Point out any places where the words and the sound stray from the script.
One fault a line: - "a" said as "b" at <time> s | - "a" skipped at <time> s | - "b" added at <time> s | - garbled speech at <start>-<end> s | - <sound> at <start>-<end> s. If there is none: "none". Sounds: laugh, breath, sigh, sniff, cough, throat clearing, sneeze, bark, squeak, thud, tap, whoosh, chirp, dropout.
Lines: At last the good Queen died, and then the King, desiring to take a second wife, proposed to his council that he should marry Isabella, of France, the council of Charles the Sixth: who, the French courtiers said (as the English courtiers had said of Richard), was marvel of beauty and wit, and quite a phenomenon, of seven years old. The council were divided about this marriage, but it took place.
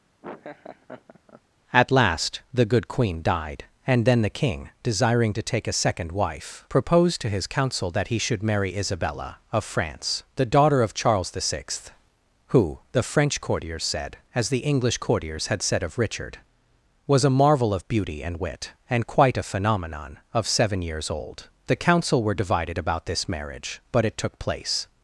- laugh at 0.2-1.4 s
- "council" said as "daughter" at 10.4 s
- "a" added at 17.2 s